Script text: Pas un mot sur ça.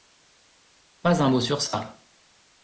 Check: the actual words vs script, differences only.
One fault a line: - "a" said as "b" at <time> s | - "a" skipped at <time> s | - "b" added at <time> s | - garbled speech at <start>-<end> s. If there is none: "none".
none